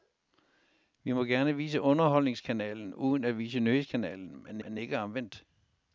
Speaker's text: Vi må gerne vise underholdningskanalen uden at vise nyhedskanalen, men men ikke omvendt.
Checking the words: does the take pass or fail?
pass